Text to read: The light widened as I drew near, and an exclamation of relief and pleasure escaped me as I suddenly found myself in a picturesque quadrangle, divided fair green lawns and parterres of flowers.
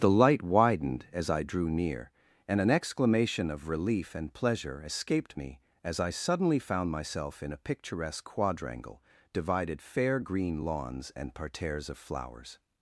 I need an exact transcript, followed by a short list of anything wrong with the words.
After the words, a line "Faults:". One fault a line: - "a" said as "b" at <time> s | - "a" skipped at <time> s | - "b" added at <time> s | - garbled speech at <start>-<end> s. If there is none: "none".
The light widened as I drew near, and an exclamation of relief and pleasure escaped me as I suddenly found myself in a picturesque quadrangle, divided fair green lawns and parterres of flowers.
Faults:
none